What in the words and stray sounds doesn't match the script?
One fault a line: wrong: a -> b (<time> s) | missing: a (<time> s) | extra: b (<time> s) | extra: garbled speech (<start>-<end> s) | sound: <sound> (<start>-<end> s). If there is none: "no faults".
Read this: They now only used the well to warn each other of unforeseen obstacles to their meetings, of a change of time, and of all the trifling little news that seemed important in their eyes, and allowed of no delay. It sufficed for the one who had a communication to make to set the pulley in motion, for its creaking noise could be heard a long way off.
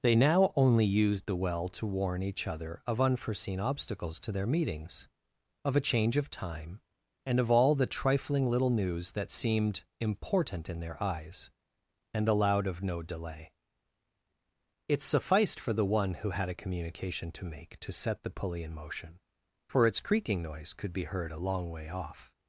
no faults